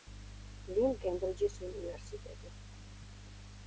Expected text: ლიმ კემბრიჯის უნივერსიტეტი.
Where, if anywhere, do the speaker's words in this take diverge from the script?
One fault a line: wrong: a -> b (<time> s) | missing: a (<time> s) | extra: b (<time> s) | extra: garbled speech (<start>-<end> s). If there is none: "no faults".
no faults